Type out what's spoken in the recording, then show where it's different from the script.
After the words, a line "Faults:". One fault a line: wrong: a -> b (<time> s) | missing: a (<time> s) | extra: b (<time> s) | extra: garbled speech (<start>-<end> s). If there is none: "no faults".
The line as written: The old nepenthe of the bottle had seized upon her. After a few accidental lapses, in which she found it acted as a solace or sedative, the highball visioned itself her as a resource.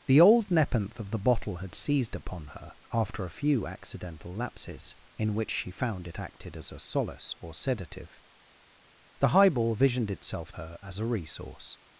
The old nepenthe of the bottle had seized upon her. After a few accidental lapses, in which she found it acted as a solace or sedative, the highball visioned itself her as a resource.
Faults:
no faults